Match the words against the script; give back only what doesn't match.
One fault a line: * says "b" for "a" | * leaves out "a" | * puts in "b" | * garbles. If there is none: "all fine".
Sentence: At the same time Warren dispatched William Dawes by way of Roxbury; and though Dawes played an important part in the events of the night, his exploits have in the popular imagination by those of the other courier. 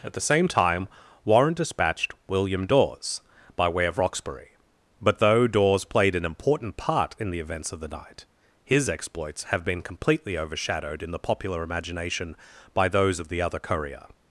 * says "but" for "and"
* puts in "been completely overshadowed"